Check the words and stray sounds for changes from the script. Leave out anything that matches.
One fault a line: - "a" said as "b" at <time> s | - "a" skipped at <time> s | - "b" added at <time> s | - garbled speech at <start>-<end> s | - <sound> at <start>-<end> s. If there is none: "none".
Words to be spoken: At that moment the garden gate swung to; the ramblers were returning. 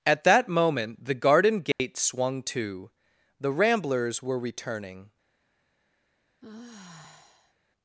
- dropout at 1.7-1.8 s
- sigh at 6.4-7.5 s